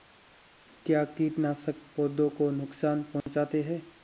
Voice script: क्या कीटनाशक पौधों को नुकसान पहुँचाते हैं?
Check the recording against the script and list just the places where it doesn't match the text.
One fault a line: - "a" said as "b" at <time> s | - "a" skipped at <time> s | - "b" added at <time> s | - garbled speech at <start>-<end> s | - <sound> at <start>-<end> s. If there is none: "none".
- dropout at 3.2-3.3 s